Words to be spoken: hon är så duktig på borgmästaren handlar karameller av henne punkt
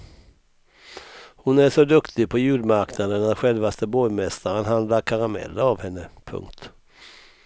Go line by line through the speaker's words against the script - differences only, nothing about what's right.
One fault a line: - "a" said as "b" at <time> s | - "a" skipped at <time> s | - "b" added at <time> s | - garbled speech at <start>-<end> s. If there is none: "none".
- "julmarknaden att självaste" added at 2.4 s